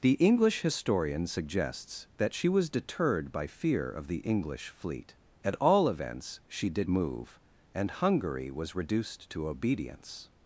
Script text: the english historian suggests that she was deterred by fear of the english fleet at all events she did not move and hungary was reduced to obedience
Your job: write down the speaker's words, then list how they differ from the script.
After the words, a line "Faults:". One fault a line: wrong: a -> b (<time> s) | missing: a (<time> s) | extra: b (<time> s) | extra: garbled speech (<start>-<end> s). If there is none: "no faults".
the english historian suggests that she was deterred by fear of the english fleet at all events she did move and hungary was reduced to obedience
Faults:
missing: not (6.9 s)